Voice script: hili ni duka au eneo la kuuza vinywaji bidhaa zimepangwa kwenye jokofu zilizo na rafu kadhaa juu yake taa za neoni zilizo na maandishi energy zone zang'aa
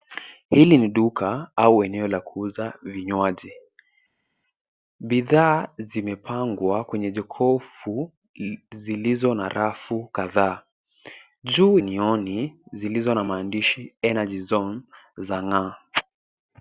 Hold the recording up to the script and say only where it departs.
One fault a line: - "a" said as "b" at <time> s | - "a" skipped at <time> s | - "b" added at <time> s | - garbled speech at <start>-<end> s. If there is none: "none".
- "yake taa za" skipped at 11.8 s